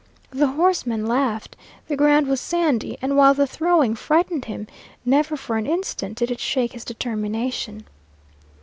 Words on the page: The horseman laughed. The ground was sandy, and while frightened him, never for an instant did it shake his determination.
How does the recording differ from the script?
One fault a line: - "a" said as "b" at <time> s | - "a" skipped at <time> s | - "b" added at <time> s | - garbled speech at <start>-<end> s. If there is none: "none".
- "the throwing" added at 3.4 s